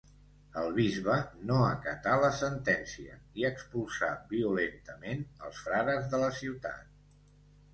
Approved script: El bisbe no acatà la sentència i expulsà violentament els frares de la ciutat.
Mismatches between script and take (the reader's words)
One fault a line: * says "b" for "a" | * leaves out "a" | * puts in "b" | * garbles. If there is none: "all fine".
all fine